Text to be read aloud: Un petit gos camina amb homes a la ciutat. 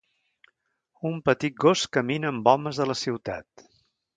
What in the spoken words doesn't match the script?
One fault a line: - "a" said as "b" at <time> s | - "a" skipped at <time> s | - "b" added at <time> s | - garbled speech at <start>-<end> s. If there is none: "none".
none